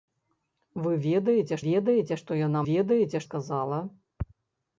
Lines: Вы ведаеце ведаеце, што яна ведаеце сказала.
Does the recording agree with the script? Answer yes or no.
yes